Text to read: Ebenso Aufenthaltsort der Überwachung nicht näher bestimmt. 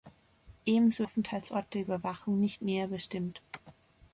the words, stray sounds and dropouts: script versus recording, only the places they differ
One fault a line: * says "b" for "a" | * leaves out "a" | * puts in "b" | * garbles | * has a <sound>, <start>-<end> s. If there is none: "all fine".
all fine